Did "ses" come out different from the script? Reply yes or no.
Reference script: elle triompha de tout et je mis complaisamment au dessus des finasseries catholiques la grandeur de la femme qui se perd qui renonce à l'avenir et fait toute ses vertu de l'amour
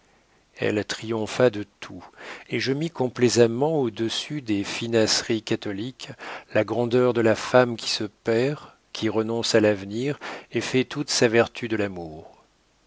yes